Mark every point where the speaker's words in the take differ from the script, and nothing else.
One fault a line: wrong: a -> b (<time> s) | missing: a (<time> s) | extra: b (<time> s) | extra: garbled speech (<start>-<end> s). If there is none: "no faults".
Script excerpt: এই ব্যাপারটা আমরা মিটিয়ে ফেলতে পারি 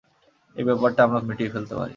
no faults